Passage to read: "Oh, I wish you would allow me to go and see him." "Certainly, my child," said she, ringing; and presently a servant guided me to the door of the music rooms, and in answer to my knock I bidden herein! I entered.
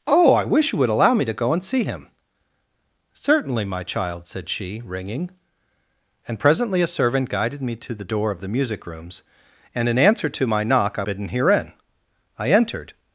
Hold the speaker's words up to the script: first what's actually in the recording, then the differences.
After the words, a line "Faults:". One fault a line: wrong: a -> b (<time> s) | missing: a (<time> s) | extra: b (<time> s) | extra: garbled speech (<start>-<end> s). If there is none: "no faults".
"Oh, I wish you would allow me to go and see him." "Certainly, my child," said she, ringing; and presently a servant guided me to the door of the music rooms, and in answer to my knock I bidden herein! I entered.
Faults:
no faults